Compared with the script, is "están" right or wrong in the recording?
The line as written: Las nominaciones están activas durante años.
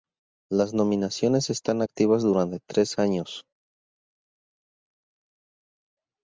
right